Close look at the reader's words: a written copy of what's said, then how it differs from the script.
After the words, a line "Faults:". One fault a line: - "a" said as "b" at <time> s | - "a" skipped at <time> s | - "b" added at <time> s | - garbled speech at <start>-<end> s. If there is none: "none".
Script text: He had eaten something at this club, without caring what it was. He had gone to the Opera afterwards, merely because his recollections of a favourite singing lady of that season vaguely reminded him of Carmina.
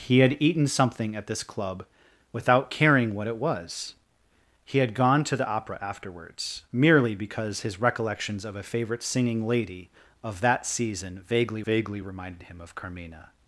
He had eaten something at this club, without caring what it was. He had gone to the Opera afterwards, merely because his recollections of a favourite singing lady of that season vaguely vaguely reminded him of Carmina.
Faults:
- "vaguely" added at 11.6 s